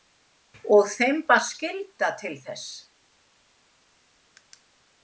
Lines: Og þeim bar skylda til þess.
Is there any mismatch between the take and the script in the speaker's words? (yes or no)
no